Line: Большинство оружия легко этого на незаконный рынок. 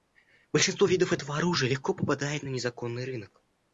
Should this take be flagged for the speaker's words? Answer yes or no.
yes